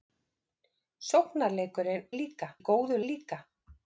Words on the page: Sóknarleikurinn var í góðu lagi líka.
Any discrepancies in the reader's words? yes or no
yes